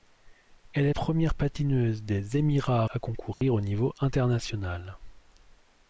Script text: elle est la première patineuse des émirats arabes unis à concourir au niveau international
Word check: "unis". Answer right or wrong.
wrong